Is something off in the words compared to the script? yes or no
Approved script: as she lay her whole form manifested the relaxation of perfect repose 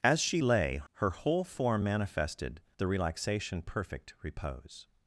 yes